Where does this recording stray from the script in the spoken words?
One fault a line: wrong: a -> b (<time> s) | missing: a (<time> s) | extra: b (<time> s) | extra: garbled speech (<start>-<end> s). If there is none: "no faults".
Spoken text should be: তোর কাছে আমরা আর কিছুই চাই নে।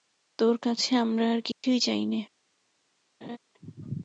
no faults